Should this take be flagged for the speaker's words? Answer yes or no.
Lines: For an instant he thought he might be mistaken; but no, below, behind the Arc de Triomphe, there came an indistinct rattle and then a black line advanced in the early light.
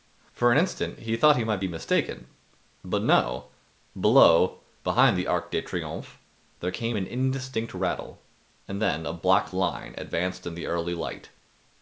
no